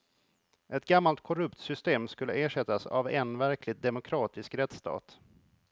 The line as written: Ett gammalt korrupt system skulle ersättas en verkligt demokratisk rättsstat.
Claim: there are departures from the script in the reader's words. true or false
true